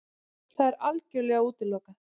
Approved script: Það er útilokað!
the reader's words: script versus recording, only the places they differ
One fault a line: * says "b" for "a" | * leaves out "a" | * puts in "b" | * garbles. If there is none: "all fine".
* puts in "algjörlega"